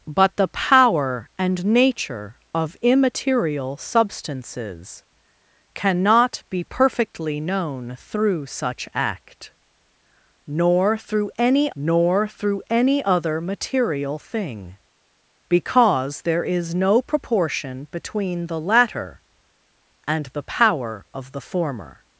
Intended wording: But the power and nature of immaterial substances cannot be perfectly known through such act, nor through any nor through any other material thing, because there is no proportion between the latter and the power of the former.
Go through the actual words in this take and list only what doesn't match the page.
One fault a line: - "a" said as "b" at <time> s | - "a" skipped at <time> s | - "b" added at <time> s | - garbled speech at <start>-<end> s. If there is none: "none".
none